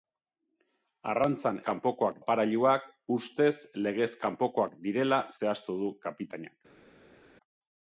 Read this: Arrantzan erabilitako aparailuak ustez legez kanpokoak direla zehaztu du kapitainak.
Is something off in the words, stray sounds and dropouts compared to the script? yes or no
yes